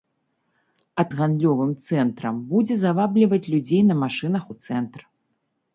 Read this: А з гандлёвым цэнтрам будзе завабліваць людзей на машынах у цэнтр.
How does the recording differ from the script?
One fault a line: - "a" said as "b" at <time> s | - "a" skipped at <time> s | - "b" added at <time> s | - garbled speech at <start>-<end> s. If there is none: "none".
none